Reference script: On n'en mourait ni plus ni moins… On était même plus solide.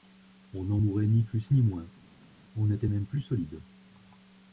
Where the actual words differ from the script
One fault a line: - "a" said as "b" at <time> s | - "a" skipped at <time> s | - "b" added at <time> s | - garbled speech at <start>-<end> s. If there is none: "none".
none